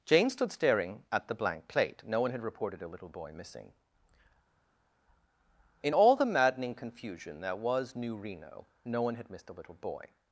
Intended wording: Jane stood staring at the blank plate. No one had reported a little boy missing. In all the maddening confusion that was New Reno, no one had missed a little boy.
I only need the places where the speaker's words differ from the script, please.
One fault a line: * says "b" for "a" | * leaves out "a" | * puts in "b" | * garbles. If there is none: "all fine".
all fine